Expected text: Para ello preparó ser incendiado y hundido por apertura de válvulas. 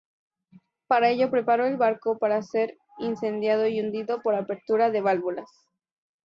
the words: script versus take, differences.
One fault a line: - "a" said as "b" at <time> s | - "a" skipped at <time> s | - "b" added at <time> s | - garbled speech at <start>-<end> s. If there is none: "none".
- "el barco para" added at 1.7 s